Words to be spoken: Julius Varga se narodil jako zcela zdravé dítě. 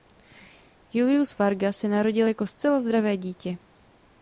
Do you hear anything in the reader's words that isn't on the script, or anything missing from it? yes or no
no